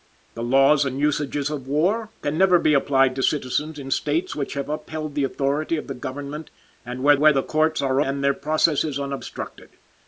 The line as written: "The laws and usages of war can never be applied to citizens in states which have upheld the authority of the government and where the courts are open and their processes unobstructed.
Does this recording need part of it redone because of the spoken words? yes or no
yes